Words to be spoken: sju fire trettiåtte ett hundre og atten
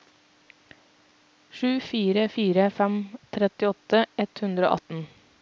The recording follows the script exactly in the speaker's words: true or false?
false